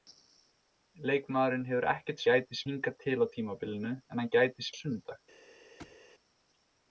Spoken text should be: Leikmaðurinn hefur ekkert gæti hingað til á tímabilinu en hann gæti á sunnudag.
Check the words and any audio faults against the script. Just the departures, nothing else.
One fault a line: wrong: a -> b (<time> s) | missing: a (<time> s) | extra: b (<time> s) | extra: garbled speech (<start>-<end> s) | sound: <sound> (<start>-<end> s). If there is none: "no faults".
sound: thud (5.8-6.0 s)